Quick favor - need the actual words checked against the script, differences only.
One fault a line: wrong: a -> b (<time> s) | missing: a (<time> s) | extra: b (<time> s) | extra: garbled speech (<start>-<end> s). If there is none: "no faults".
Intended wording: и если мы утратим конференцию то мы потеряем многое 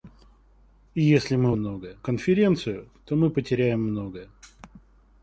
wrong: утратим -> многое (1.5 s)